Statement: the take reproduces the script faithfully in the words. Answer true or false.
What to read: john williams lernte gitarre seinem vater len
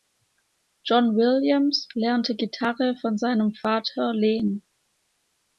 false